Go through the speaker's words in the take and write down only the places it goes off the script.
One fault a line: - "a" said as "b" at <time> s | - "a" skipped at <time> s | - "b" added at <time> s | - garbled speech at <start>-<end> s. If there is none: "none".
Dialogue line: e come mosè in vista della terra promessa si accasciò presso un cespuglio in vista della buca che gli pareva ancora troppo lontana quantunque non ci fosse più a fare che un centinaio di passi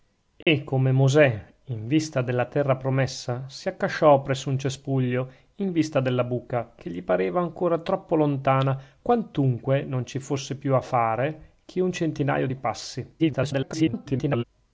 - garbled speech at 13.2-14.4 s